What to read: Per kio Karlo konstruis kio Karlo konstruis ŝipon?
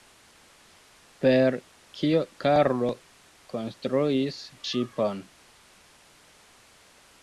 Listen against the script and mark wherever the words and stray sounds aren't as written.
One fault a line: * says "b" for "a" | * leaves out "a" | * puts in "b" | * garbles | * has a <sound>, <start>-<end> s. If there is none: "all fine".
* leaves out "kio Karlo konstruis"